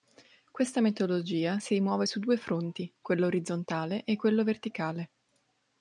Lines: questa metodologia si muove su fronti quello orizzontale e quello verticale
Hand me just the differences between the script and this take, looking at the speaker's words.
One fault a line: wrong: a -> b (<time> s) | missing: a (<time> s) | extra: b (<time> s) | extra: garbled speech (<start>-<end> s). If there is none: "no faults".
extra: due (2.2 s)